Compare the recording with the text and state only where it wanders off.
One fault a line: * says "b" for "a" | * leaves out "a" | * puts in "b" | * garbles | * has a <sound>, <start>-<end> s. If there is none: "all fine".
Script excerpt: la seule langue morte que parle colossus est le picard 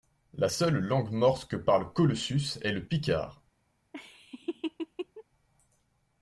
* has a laugh, 3.9-5.2 s